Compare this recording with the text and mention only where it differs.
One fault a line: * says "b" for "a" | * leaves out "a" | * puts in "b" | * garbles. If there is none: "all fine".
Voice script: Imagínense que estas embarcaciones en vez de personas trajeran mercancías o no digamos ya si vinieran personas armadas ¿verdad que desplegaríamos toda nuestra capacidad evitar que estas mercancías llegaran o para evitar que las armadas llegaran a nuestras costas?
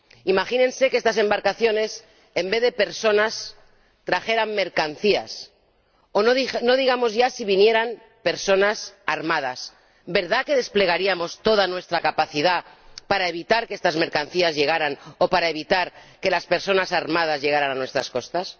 * puts in "para"
* puts in "personas"